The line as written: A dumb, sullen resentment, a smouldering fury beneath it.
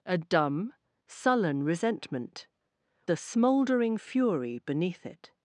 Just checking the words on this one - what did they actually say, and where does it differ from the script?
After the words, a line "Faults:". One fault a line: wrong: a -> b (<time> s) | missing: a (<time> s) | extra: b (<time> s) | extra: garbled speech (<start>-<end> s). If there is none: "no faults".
A dumb, sullen resentment, a smouldering fury beneath it.
Faults:
no faults